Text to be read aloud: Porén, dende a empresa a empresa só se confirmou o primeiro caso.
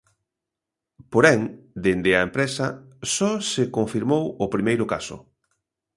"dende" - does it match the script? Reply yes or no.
yes